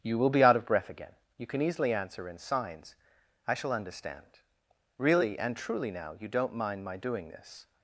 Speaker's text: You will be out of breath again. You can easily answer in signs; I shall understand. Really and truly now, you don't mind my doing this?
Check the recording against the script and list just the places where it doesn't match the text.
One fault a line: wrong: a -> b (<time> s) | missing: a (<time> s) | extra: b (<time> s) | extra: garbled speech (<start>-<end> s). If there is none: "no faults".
no faults